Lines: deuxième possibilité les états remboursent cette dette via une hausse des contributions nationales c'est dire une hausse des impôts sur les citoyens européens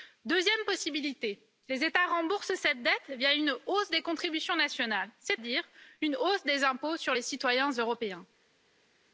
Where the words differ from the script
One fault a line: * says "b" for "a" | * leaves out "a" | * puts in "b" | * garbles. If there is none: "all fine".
all fine